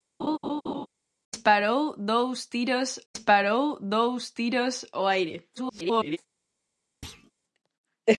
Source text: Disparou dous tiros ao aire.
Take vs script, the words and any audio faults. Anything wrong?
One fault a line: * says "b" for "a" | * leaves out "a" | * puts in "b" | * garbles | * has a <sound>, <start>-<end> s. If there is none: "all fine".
* has a laugh, 0.2-0.9 s
* puts in "disparou dous tiros"
* garbles
* has a thud, 7.0-7.3 s